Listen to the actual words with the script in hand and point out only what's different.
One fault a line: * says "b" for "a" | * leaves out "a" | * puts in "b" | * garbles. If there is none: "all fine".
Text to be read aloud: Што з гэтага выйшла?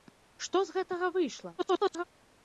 * garbles